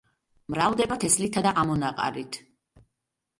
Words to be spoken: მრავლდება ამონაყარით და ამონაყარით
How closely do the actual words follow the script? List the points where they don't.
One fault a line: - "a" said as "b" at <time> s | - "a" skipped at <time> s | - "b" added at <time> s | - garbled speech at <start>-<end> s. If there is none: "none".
- "ამონაყარით" said as "თესლითა" at 1.0 s